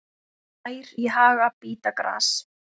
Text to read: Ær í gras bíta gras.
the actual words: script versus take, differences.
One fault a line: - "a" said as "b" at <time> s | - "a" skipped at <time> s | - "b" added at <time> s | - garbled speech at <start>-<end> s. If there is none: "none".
- "gras" said as "haga" at 1.2 s